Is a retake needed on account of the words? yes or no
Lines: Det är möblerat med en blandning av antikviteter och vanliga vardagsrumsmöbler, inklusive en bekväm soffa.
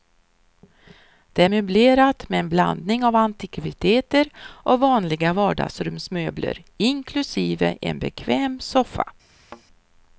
no